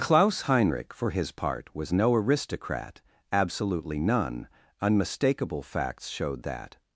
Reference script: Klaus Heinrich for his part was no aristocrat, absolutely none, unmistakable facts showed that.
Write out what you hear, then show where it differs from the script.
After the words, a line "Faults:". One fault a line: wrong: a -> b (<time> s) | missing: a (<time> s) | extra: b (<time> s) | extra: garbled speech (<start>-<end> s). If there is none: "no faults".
Klaus Heinrich for his part was no aristocrat, absolutely none, unmistakable facts showed that.
Faults:
no faults